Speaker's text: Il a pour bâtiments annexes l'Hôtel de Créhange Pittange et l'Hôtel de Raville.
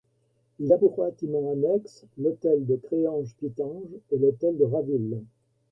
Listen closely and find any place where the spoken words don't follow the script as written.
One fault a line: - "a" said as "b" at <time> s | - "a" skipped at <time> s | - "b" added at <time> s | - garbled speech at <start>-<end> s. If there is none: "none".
none